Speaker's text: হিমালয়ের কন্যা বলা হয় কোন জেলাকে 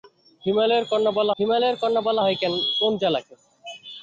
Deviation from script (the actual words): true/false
true